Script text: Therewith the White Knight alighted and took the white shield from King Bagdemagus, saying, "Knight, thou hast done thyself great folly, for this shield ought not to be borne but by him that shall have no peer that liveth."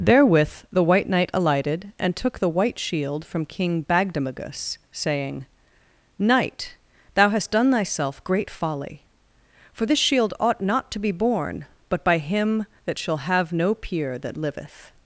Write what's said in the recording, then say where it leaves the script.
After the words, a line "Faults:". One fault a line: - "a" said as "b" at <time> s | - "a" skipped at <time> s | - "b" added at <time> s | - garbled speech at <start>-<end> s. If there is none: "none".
Therewith the White Knight alighted and took the white shield from King Bagdemagus, saying, "Knight, thou hast done thyself great folly, for this shield ought not to be borne but by him that shall have no peer that liveth."
Faults:
none